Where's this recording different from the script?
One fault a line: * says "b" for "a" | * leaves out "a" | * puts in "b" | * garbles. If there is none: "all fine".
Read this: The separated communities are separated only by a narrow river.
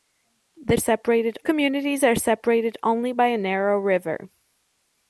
all fine